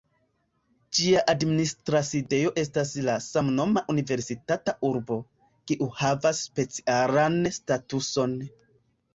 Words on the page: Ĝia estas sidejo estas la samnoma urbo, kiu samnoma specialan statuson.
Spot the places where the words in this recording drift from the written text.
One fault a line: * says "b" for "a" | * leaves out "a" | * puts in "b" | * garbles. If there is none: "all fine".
* says "administra" for "estas"
* puts in "universitata"
* says "havas" for "samnoma"